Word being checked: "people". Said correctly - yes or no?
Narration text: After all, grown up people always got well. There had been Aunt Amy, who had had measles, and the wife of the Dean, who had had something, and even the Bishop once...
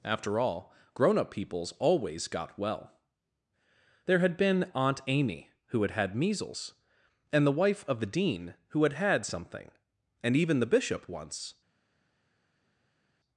no